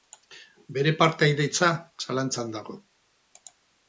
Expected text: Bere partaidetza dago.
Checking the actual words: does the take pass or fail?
fail